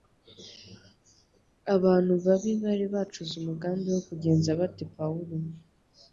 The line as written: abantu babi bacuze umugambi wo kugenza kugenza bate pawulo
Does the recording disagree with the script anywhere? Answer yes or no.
yes